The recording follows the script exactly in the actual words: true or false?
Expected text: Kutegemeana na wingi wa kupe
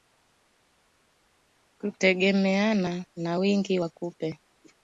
true